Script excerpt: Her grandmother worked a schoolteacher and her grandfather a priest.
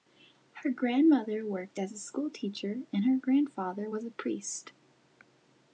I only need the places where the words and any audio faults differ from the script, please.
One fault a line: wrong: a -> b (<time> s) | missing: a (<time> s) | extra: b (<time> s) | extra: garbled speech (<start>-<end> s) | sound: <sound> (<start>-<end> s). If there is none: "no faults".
extra: as (1.8 s)
extra: was (3.9 s)